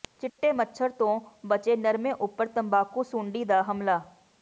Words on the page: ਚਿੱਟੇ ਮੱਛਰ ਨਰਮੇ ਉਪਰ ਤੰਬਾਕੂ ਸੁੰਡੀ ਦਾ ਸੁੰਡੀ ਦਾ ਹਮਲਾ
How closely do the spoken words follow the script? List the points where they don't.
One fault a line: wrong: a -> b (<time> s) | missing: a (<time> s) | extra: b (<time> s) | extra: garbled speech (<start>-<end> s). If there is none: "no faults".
extra: ਤੋਂ ਬਚੇ (0.9 s)
missing: ਸੁੰਡੀ ਦਾ (3.6 s)